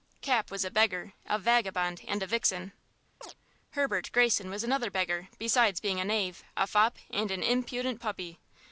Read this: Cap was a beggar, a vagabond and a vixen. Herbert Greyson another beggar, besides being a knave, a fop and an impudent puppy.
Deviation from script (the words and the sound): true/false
true